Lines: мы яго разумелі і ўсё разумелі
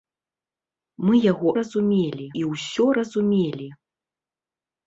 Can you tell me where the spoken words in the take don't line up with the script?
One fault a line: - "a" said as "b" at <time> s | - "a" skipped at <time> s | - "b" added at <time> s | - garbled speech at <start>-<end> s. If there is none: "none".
none